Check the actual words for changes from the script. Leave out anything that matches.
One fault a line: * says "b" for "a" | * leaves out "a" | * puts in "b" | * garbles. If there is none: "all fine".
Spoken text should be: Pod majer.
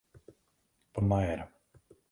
all fine